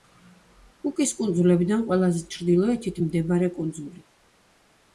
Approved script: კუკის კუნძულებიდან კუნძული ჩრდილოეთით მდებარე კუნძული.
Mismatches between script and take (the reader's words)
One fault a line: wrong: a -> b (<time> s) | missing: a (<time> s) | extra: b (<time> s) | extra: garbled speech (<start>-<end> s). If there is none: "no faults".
wrong: კუნძული -> ყველაზე (1.9 s)